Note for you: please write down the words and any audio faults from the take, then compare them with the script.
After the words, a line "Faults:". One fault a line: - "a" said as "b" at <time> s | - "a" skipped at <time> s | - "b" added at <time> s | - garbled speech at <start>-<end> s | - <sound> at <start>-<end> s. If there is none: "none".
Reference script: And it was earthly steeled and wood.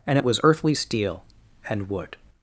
And it was earthly steel and wood.
Faults:
- "steeled" said as "steel" at 0.7 s